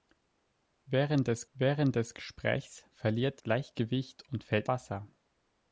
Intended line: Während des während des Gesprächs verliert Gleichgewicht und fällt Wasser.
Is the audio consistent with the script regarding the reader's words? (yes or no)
yes